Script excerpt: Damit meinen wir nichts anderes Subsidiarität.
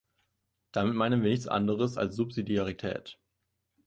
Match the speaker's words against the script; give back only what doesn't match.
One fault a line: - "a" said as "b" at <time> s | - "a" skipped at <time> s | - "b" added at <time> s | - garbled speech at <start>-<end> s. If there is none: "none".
- "als" added at 2.0 s